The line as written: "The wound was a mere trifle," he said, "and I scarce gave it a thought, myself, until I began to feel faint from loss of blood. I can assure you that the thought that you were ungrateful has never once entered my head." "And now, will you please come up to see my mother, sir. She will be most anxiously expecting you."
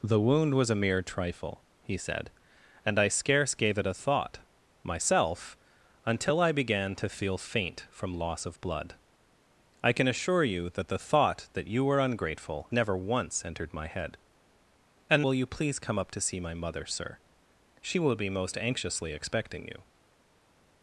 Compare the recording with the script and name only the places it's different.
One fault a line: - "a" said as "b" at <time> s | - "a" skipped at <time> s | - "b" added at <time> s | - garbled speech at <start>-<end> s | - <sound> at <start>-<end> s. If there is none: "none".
- "has" skipped at 12.7 s
- "now" skipped at 15.2 s